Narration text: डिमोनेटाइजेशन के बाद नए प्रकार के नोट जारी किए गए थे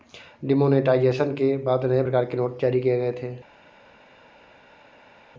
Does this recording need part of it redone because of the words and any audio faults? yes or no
no